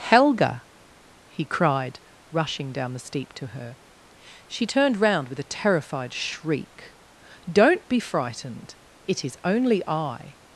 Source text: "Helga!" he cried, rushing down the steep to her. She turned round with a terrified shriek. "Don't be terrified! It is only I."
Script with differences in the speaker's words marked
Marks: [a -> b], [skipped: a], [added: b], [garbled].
"Helga!" he cried, rushing down the steep to her. She turned round with a terrified shriek. "Don't be [terrified! -> frightened] It is only I."